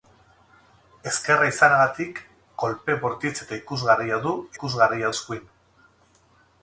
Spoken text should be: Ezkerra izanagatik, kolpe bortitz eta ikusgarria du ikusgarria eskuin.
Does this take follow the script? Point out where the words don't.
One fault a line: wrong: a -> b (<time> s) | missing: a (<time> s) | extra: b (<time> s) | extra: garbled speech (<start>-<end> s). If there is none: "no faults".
no faults